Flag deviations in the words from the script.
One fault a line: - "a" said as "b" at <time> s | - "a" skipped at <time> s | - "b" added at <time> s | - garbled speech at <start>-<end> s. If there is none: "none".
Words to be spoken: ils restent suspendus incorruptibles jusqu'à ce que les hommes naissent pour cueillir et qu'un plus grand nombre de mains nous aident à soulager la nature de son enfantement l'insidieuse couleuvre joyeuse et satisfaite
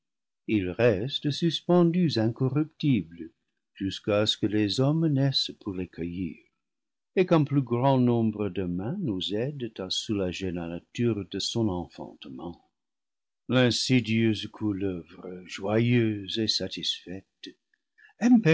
- "les" added at 5.7 s